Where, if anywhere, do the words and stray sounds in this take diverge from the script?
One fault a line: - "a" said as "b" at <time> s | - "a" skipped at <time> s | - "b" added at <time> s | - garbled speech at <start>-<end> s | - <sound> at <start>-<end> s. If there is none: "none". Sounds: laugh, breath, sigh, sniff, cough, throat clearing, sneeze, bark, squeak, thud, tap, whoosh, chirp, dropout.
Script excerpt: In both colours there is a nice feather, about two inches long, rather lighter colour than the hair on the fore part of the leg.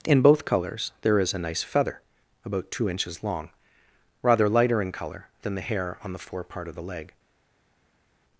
- "in" added at 4.8 s